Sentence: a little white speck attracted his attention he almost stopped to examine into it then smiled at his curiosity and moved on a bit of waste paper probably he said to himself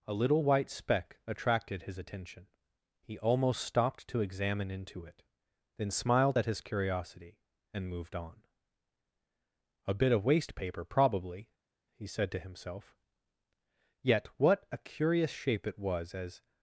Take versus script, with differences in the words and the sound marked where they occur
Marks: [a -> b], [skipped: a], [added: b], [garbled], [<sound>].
a little white speck attracted his attention he almost stopped to examine into it then smiled at his curiosity and moved on a bit of waste paper probably he said to himself [added: yet what a curious shape it was as]